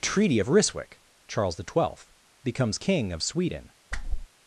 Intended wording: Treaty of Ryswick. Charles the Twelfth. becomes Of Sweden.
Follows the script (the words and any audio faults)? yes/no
no